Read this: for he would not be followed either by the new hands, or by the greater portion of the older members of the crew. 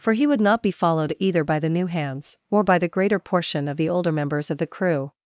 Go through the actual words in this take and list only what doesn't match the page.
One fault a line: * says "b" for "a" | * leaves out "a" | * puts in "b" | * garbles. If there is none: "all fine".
all fine